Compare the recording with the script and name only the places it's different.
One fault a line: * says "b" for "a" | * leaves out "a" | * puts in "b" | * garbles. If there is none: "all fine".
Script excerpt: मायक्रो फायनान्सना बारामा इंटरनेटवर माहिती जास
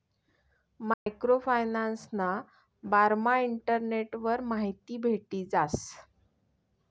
* puts in "भेटी"